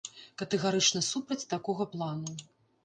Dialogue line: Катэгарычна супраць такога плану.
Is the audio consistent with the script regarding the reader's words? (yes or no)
yes